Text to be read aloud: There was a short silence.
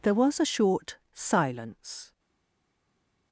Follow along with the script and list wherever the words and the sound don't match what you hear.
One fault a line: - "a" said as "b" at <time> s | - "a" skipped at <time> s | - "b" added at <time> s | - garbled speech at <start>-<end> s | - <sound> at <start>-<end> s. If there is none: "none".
none